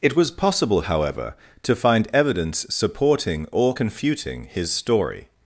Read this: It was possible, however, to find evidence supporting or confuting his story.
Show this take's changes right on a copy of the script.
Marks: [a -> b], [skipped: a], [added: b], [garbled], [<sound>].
It was possible, however, to find evidence supporting or confuting his story.